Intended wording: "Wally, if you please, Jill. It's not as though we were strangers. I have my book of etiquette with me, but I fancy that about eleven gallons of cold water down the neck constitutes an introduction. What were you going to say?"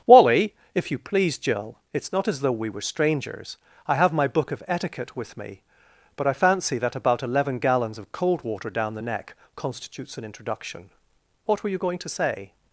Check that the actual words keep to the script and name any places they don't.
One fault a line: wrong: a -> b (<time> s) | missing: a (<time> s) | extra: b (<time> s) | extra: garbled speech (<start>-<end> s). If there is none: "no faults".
no faults